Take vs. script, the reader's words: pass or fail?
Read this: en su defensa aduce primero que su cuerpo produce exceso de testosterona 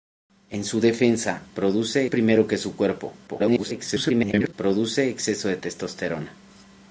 fail